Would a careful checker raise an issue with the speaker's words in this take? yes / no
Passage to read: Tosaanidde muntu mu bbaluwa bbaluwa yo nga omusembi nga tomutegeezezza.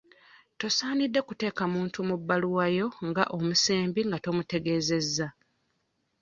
yes